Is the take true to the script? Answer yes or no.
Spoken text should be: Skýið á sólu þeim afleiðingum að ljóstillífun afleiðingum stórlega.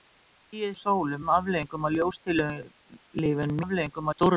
yes